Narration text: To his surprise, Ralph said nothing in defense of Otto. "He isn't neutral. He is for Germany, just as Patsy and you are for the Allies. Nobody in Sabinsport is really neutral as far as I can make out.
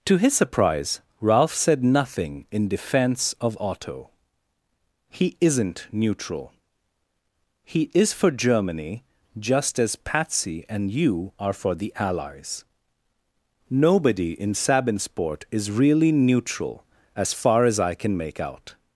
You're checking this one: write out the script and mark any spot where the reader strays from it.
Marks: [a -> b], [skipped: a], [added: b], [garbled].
To his surprise, Ralph said nothing in defense of Otto. "He isn't neutral. He is for Germany, just as Patsy and you are for the Allies. Nobody in Sabinsport is really neutral as far as I can make out.